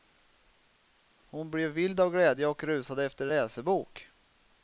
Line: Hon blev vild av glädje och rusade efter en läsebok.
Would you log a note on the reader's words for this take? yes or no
yes